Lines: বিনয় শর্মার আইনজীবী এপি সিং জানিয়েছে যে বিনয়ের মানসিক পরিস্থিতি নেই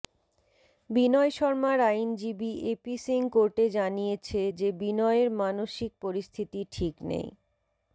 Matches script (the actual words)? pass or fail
fail